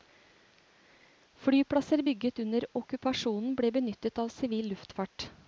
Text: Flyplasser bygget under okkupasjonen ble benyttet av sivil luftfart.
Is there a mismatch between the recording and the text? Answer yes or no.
no